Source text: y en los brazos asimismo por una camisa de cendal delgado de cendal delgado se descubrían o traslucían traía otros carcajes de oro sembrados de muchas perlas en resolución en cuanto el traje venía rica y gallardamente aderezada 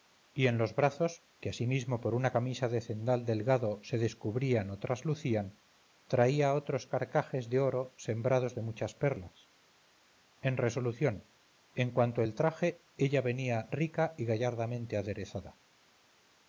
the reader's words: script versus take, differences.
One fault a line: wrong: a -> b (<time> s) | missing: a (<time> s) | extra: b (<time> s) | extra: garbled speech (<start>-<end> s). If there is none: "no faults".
extra: que (1.4 s)
missing: de cendal delgado (3.8 s)
extra: ella (12.9 s)